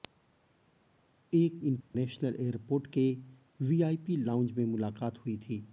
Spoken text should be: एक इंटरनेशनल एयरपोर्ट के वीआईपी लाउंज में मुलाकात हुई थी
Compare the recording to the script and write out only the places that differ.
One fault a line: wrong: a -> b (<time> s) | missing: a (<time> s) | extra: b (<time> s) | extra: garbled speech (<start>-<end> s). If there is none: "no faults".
no faults